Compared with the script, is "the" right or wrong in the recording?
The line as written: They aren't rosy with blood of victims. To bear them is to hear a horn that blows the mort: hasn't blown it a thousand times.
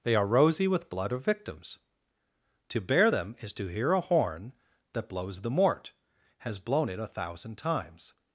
right